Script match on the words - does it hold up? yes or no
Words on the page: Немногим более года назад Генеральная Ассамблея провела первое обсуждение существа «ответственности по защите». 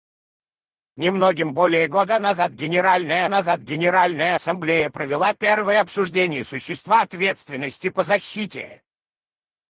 no